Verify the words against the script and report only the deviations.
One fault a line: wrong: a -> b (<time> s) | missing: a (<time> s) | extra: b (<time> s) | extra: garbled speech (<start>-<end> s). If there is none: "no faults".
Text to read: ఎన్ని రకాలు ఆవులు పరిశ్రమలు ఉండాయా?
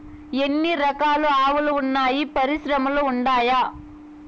extra: వున్నాయి (1.7 s)